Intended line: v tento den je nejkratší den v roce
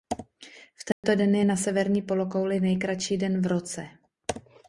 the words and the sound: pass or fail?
fail